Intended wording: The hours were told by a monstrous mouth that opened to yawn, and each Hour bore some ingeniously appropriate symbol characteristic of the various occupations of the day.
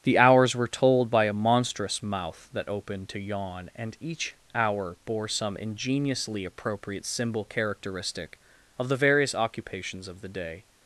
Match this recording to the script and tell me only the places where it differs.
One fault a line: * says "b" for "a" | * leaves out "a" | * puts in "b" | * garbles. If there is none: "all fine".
all fine